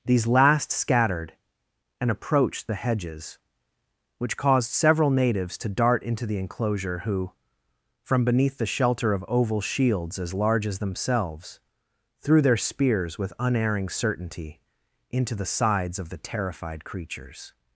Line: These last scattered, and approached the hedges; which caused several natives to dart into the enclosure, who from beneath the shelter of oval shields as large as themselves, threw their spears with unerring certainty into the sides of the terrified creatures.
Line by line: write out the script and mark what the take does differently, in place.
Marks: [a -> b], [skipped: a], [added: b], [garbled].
These last scattered, and approached the hedges; which caused several natives to dart into the enclosure, who from beneath the shelter of oval shields as large as themselves, threw their spears with unerring certainty into the sides of the terrified creatures.